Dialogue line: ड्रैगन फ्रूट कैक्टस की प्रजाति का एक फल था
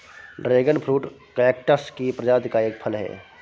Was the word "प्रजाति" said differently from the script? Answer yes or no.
no